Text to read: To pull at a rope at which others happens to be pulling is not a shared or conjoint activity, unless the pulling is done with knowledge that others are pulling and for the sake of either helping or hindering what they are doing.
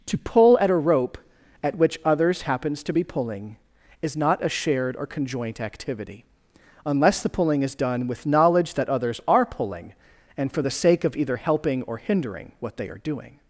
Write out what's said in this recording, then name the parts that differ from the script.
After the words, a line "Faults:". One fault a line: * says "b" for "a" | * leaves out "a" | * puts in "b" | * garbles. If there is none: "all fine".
To pull at a rope at which others happens to be pulling is not a shared or conjoint activity, unless the pulling is done with knowledge that others are pulling and for the sake of either helping or hindering what they are doing.
Faults:
all fine